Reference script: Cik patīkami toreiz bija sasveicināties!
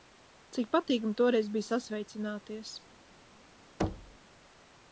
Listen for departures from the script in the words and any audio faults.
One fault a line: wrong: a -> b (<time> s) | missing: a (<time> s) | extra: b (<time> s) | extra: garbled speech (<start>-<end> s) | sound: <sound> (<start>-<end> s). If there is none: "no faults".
sound: thud (3.8-4.2 s)